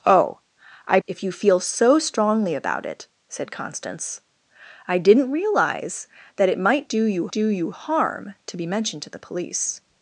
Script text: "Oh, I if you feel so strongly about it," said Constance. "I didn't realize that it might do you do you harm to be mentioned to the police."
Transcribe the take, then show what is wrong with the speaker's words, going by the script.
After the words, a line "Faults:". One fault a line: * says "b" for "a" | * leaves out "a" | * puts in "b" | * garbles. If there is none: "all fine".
"Oh, I if you feel so strongly about it," said Constance. "I didn't realize that it might do you do you harm to be mentioned to the police."
Faults:
all fine